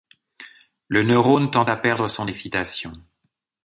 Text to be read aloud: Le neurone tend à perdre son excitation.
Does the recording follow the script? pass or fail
pass